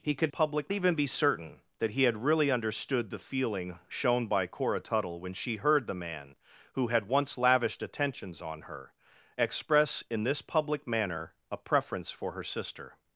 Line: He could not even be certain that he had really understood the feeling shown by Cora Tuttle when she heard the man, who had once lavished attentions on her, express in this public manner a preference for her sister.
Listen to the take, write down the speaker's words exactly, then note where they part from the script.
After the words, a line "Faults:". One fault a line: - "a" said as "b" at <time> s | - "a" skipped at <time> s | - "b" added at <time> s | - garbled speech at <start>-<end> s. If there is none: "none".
He could public even be certain that he had really understood the feeling shown by Cora Tuttle when she heard the man, who had once lavished attentions on her, express in this public manner a preference for her sister.
Faults:
- "not" said as "public" at 0.3 s